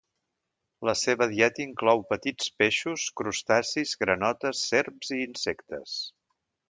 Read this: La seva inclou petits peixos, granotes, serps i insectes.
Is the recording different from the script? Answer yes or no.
yes